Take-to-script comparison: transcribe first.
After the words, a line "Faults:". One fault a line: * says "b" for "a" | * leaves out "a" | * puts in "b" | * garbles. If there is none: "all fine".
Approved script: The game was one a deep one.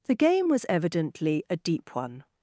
The game was evidently a deep one.
Faults:
* says "evidently" for "one"